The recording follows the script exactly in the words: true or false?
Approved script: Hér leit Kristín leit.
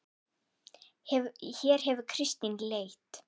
false